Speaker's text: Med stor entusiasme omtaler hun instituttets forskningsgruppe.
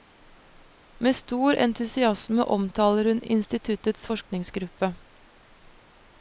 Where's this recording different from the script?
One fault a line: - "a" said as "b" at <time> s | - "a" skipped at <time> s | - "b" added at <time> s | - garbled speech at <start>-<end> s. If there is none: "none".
none